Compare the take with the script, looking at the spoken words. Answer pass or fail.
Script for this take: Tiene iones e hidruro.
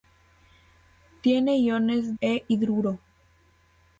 pass